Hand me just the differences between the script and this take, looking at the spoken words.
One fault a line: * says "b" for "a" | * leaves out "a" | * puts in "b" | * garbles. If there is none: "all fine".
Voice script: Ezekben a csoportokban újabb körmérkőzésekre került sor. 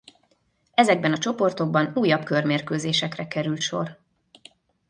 all fine